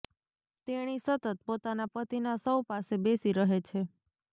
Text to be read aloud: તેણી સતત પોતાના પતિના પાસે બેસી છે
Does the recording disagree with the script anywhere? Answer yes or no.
yes